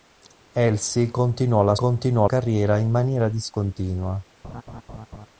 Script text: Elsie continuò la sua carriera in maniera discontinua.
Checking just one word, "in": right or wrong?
right